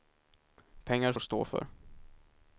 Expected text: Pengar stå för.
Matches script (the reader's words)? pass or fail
pass